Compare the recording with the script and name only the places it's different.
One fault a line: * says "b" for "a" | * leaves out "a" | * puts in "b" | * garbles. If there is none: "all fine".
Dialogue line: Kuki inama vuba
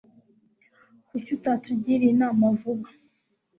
* puts in "utatugiriye"